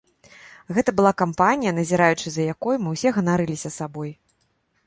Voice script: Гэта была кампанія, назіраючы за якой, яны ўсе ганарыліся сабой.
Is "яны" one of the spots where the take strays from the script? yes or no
yes